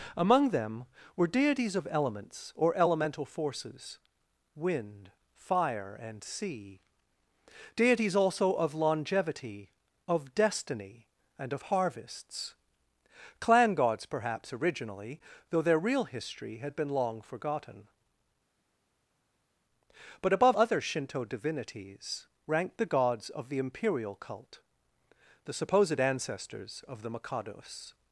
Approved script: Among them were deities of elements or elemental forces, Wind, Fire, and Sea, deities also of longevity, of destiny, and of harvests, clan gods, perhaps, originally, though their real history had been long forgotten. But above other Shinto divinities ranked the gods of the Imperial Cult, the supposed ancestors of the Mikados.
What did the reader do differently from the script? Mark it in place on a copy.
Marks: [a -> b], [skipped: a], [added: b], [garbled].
Among them were deities of elements or elemental forces, Wind, Fire, and Sea, deities also of longevity, of destiny, and of harvests, clan gods, perhaps, originally, though their real history had been long forgotten. But above other Shinto divinities ranked the gods of the Imperial Cult, the supposed ancestors of the Mikados.